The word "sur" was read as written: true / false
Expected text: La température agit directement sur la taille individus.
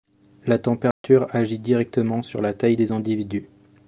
true